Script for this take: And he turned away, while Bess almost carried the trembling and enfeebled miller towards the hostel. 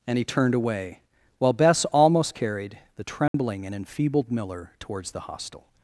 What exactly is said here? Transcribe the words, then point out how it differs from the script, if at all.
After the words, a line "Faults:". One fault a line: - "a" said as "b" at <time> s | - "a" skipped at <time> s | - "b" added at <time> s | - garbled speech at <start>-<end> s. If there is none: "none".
And he turned away, while Bess almost carried the trembling and enfeebled miller towards the hostel.
Faults:
none